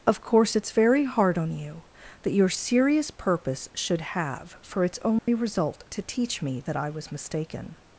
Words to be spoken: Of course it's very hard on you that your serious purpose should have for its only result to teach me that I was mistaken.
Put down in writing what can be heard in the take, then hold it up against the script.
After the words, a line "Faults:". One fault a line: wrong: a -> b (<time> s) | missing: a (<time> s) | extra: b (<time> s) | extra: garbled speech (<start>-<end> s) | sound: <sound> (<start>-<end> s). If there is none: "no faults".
Of course it's very hard on you that your serious purpose should have for its only result to teach me that I was mistaken.
Faults:
sound: dropout (5.2-5.3 s)